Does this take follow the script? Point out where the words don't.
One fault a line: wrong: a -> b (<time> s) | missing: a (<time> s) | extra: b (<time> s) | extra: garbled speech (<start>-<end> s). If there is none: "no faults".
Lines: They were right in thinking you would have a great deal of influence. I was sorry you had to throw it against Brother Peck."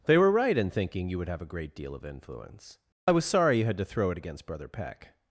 no faults